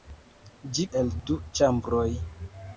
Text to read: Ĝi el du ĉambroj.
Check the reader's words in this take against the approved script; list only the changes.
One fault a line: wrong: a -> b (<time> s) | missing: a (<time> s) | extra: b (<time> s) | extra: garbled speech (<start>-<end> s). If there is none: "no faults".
no faults